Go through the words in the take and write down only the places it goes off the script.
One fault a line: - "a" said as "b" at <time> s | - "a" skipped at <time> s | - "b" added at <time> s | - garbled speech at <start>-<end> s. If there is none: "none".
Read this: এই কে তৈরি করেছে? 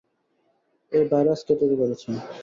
- "ভাইরাস" added at 1.1 s